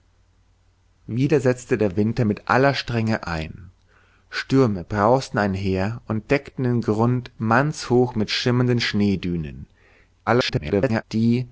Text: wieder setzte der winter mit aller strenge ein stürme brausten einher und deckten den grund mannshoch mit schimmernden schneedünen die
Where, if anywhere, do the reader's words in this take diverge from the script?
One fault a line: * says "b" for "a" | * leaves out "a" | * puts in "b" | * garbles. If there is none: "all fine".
* garbles